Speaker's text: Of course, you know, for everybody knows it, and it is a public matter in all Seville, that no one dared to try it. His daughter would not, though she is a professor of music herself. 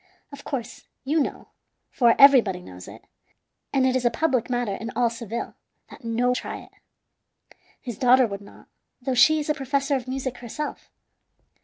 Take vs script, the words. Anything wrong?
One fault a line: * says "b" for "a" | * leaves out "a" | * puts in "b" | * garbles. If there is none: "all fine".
* leaves out "one dared to"